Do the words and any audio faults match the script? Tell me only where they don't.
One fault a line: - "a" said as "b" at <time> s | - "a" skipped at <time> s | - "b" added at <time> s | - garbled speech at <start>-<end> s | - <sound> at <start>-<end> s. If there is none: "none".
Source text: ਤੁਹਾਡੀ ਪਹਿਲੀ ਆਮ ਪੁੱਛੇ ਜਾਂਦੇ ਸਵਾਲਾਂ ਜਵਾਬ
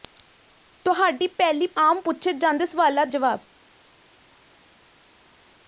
none